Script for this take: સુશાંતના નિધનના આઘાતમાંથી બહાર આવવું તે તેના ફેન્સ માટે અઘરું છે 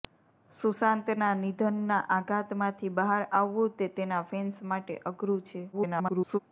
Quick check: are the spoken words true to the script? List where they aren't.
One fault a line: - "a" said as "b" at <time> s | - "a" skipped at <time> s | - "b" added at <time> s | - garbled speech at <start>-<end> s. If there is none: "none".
- garbled speech at 5.7-6.4 s